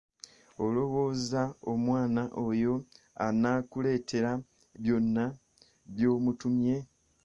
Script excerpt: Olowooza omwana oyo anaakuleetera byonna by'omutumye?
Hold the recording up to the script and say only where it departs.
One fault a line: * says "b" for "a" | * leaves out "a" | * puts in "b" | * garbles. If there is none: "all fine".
all fine